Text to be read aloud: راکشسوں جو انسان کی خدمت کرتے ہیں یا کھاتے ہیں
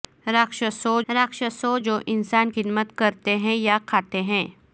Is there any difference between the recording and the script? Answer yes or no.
yes